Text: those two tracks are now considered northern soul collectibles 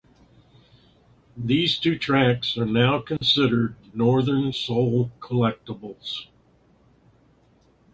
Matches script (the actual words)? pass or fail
fail